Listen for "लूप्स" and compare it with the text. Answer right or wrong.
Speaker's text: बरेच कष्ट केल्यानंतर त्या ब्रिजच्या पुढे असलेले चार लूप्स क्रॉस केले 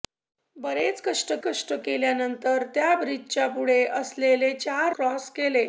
wrong